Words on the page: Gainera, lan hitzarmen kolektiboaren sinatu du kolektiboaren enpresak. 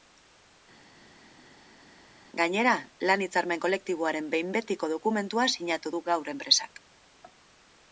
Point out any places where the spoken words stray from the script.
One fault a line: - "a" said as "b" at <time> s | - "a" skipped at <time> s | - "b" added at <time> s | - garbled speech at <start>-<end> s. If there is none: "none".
- "behin betiko dokumentua" added at 4.3 s
- "kolektiboaren" said as "gaur" at 6.1 s